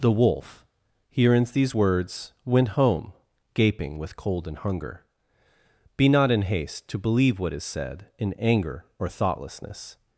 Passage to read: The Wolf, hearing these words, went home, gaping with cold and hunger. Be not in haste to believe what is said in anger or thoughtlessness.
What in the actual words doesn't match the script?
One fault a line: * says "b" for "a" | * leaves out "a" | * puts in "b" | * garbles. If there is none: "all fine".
* says "hearings" for "hearing"